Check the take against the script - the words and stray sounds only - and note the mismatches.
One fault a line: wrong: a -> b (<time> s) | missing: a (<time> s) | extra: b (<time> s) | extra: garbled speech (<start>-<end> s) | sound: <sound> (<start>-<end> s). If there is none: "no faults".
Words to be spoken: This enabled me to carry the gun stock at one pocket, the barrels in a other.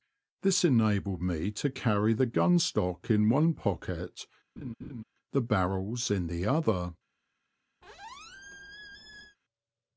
wrong: at -> in (3.1 s)
sound: laugh (4.6-5.0 s)
wrong: a -> the (6.3 s)
sound: squeak (7.8-9.4 s)